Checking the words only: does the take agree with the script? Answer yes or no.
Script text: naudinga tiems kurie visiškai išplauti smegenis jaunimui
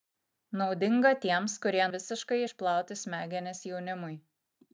yes